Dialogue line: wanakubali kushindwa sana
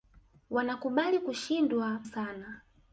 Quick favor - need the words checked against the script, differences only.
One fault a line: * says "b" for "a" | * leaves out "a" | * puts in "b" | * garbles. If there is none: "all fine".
all fine